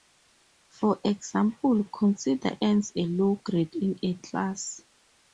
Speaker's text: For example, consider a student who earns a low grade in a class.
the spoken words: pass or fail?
fail